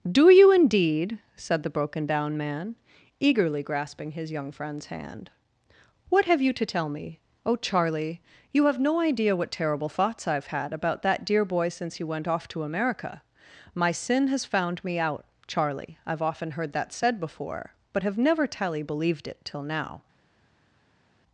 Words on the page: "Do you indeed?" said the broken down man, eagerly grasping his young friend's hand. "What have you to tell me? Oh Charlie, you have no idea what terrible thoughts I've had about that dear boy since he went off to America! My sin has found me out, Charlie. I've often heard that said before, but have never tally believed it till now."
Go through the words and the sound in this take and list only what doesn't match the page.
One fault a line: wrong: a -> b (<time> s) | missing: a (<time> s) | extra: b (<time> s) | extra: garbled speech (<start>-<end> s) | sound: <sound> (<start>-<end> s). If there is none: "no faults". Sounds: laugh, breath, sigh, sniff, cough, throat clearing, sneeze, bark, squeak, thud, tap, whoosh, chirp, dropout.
no faults